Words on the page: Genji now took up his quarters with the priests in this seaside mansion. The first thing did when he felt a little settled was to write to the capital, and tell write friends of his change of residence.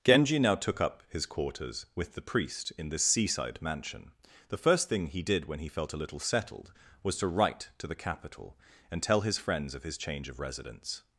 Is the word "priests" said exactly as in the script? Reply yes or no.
no